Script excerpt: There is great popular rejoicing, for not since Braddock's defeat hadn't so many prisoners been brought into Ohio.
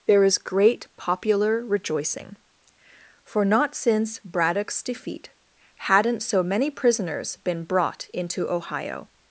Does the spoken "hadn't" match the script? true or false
true